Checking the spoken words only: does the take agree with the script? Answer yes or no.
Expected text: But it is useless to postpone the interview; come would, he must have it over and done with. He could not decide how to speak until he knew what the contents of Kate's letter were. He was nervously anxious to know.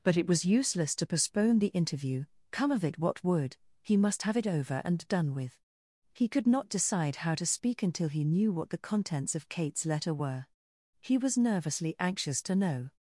no